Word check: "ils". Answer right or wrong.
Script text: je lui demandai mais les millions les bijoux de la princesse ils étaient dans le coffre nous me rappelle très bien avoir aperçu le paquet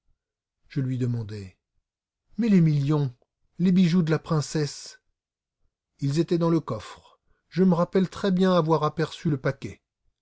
right